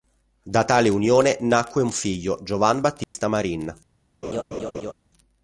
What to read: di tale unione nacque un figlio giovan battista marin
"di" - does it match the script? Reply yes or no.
no